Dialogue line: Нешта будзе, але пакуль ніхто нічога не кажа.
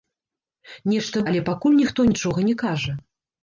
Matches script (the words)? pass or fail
fail